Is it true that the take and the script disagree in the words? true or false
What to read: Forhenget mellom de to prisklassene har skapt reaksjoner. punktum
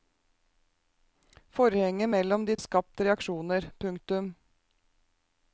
true